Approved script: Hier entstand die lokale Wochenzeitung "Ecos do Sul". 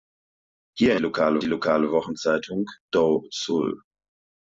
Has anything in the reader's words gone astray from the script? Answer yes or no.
yes